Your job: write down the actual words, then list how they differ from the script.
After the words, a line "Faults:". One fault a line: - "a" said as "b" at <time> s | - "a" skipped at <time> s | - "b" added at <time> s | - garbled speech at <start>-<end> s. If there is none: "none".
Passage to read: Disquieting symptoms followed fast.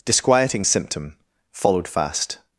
Disquieting symptom followed fast.
Faults:
- "symptoms" said as "symptom" at 0.6 s